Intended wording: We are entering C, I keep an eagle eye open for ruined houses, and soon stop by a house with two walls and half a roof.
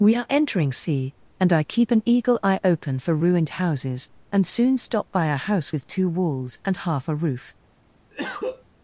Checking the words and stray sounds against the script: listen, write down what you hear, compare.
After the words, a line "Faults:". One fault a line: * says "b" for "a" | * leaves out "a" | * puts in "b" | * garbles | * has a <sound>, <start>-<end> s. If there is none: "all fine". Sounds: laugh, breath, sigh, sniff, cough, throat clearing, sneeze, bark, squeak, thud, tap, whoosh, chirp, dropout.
We are entering C, and I keep an eagle eye open for ruined houses, and soon stop by a house with two walls and half a roof.
Faults:
* puts in "and"
* has a cough, 8.1-8.6 s